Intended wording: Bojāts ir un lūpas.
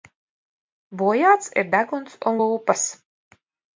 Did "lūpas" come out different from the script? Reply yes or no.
no